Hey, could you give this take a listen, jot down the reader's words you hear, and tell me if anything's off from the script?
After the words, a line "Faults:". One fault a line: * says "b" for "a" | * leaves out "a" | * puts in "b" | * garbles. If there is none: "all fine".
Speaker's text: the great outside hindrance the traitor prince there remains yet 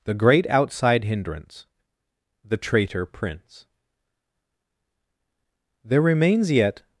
the great outside hindrance the traitor prince there remains yet
Faults:
all fine